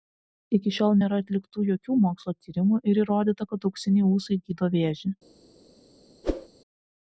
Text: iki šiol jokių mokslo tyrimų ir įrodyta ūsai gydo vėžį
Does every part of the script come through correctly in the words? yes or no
no